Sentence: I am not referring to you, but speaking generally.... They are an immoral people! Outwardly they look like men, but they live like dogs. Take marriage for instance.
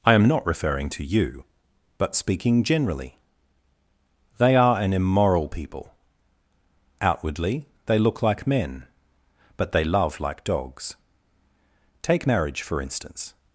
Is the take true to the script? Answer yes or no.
no